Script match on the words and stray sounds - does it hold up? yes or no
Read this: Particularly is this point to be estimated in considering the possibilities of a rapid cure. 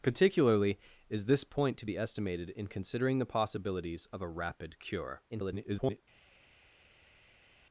no